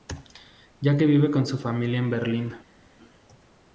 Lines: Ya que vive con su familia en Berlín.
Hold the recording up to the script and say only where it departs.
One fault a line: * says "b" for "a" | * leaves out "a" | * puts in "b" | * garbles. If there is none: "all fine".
all fine